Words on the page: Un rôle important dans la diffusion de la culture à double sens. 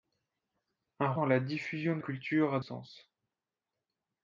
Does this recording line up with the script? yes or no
no